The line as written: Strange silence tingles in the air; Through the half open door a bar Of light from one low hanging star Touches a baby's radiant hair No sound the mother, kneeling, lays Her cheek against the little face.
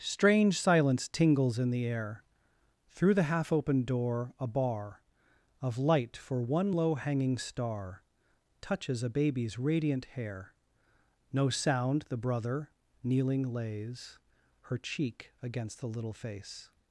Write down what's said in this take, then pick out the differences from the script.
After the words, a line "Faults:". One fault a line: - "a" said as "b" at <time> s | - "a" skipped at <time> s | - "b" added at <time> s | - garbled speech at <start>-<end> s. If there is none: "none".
Strange silence tingles in the air; Through the half open door a bar Of light for one low hanging star Touches a baby's radiant hair No sound the brother, kneeling, lays Her cheek against the little face.
Faults:
- "from" said as "for" at 6.2 s
- "mother" said as "brother" at 12.2 s